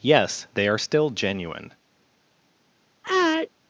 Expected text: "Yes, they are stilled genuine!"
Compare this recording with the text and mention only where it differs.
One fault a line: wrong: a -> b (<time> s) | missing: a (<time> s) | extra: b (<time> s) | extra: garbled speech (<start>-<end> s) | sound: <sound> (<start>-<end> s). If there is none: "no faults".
wrong: stilled -> still (0.7 s)
sound: sneeze (3.0-3.5 s)